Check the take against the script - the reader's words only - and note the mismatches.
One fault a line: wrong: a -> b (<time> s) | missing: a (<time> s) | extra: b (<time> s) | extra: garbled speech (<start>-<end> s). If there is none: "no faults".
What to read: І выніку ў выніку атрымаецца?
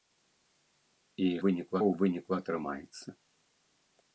no faults